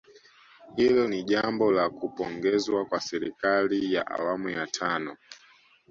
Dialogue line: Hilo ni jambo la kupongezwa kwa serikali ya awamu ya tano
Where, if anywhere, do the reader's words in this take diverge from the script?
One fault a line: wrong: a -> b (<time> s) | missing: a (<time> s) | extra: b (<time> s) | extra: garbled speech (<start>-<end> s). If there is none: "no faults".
no faults